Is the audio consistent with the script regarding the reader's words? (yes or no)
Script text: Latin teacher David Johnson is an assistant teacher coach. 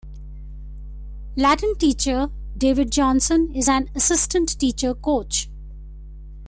yes